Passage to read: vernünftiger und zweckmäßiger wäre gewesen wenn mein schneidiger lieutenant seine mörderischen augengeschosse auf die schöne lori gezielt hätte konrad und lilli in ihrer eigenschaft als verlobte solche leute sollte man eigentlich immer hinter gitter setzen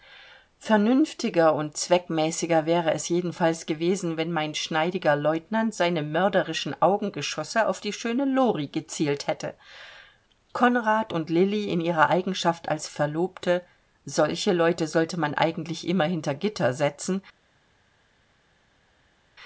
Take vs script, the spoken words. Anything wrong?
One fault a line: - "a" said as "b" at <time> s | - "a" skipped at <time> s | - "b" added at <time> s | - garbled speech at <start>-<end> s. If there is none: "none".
- "es jedenfalls" added at 2.9 s